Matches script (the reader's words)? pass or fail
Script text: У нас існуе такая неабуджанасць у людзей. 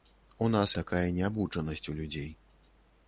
fail